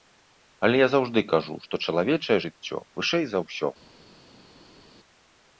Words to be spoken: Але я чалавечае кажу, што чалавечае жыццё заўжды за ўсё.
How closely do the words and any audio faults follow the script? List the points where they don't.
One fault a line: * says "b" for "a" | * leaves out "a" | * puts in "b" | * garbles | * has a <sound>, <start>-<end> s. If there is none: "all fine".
* says "заўжды" for "чалавечае"
* says "вышэй" for "заўжды"